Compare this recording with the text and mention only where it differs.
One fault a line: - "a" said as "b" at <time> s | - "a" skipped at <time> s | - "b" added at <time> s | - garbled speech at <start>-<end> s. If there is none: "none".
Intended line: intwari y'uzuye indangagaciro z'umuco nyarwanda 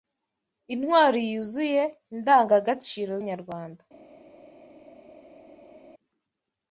- "z'umuco" skipped at 3.1 s